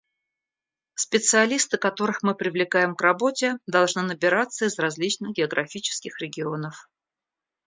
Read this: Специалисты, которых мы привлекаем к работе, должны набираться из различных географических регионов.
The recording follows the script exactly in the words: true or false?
true